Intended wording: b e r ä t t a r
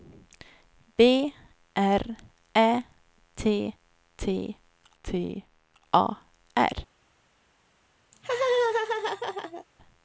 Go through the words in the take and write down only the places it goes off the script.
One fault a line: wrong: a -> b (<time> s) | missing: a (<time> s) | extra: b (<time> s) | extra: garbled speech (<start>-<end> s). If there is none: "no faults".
missing: e (1.3 s)
extra: t (5.0 s)